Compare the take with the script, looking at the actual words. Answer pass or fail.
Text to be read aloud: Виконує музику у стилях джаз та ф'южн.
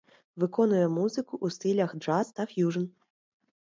pass